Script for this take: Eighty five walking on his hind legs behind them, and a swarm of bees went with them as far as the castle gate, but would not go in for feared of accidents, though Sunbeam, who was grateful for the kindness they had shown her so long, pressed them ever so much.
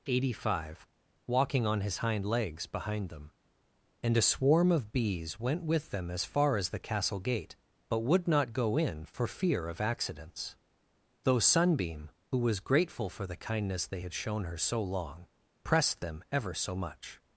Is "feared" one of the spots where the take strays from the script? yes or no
yes